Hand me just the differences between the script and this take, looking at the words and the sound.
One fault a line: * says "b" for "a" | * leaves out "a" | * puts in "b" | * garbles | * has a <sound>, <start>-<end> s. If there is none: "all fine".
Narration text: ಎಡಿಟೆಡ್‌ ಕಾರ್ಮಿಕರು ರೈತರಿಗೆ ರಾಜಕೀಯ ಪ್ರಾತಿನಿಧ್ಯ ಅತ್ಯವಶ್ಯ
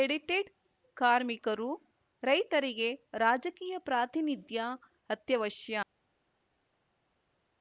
all fine